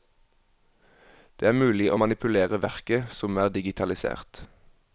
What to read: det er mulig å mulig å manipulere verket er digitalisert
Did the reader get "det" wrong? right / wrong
right